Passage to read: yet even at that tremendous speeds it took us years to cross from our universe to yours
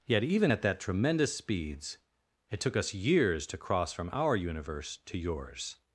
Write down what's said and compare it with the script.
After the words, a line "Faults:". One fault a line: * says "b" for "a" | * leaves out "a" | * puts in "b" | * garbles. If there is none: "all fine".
yet even at that tremendous speeds it took us years to cross from our universe to yours
Faults:
all fine